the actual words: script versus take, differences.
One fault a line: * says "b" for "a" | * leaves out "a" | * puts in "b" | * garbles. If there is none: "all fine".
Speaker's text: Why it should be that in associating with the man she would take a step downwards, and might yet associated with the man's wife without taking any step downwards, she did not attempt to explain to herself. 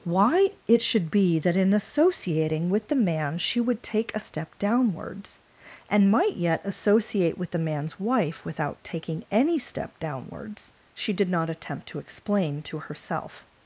* says "associate" for "associated"